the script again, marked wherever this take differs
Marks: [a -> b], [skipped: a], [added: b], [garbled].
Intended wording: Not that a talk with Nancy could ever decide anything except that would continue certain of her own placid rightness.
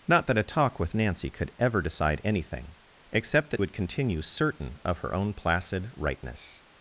Not that a talk with Nancy could ever decide anything except that would continue certain of her own placid rightness.